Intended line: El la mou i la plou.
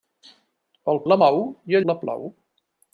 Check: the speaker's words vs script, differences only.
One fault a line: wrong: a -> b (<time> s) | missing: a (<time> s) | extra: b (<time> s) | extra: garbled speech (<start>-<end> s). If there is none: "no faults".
no faults